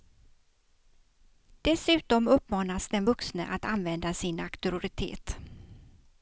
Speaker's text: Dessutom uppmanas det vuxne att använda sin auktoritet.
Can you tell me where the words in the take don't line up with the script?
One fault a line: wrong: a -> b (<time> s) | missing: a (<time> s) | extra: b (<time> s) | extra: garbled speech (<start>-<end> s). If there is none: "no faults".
wrong: det -> den (2.9 s)